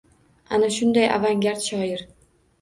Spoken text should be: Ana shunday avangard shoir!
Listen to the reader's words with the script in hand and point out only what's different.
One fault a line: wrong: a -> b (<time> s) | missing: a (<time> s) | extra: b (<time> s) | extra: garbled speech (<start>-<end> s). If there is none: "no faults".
no faults